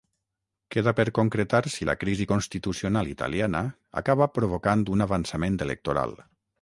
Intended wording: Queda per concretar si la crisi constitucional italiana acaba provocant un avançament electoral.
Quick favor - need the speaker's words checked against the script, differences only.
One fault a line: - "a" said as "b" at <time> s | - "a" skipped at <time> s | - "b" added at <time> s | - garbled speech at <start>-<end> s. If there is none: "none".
none